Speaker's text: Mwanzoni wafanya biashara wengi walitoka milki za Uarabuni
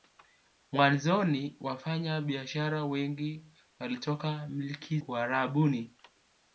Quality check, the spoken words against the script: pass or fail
fail